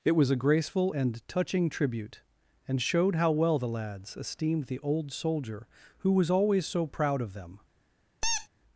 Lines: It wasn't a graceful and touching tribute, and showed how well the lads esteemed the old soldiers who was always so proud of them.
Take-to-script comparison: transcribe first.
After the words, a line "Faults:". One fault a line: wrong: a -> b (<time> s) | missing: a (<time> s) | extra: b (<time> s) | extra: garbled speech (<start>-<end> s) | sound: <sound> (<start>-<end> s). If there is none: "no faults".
It was a graceful and touching tribute, and showed how well the lads esteemed the old soldier who was always so proud of them.
Faults:
wrong: wasn't -> was (0.1 s)
wrong: soldiers -> soldier (5.1 s)
sound: squeak (8.2-8.5 s)